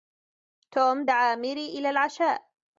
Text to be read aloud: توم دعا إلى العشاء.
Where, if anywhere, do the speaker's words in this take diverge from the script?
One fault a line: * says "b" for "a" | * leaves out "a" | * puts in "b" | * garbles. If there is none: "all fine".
* puts in "ميري"